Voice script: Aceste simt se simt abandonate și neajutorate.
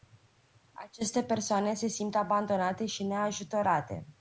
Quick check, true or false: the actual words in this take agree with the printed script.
false